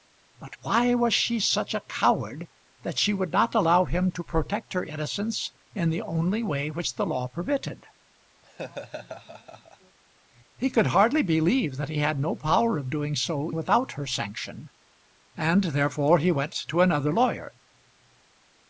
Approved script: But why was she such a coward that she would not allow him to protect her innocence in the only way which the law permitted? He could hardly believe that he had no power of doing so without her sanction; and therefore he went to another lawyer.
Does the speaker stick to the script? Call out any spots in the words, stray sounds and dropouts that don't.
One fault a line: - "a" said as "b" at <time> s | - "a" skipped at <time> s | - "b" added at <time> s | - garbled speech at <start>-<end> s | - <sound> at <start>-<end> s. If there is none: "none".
- laugh at 8.4-10.0 s